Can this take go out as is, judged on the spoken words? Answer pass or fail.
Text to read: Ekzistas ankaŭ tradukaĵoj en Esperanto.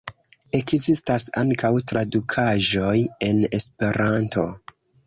pass